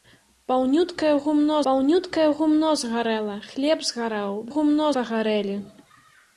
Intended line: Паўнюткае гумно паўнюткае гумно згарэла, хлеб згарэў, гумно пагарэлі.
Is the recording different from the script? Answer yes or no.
no